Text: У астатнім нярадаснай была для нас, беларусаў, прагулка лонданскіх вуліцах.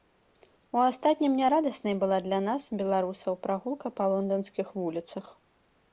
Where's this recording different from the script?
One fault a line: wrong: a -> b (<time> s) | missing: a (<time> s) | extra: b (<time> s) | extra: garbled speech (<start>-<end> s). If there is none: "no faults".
extra: па (4.0 s)